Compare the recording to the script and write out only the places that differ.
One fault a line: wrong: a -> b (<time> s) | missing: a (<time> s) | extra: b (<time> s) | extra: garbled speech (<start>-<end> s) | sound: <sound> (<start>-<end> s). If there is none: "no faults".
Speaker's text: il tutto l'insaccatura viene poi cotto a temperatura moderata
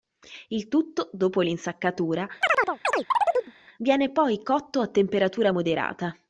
extra: dopo (1.1 s)
sound: chirp (2.4-3.5 s)